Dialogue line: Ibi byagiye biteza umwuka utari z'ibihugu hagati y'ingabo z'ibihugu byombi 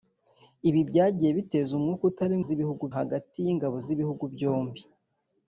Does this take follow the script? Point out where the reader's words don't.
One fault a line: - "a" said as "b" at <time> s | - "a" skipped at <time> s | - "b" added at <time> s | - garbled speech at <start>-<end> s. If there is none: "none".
none